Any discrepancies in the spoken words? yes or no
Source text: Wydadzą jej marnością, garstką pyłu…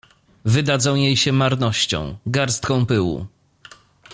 yes